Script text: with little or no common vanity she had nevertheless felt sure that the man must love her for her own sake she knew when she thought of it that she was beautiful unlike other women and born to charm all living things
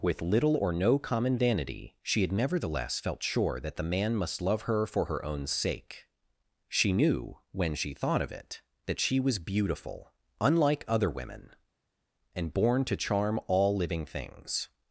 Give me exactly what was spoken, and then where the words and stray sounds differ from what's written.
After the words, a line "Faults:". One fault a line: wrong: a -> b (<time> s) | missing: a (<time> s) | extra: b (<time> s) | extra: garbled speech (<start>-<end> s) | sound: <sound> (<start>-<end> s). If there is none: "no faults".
with little or no common vanity she had nevertheless felt sure that the man must love her for her own sake she knew when she thought of it that she was beautiful unlike other women and born to charm all living things
Faults:
no faults